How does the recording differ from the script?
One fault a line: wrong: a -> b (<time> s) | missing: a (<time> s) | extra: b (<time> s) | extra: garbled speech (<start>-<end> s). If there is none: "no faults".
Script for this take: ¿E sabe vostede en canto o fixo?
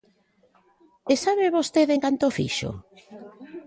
no faults